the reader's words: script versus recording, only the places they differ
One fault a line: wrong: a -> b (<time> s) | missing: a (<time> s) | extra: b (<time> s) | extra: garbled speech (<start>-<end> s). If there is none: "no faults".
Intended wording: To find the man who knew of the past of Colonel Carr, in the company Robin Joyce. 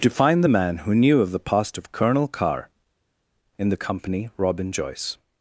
no faults